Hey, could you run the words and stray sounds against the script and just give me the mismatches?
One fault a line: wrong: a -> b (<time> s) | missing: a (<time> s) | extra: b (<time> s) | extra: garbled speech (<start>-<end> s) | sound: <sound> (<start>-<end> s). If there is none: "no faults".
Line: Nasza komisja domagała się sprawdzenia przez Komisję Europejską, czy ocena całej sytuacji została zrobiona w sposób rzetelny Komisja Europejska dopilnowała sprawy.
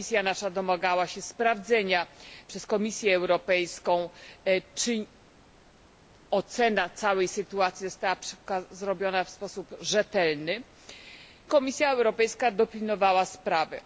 no faults